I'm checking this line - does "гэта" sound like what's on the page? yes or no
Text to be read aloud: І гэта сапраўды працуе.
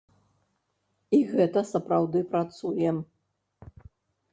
yes